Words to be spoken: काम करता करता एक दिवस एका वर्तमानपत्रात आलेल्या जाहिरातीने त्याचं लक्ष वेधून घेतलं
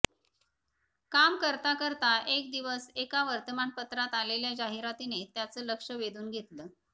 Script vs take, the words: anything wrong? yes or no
no